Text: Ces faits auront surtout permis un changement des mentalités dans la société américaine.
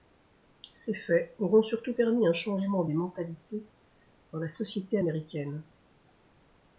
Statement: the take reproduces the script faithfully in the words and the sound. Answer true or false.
true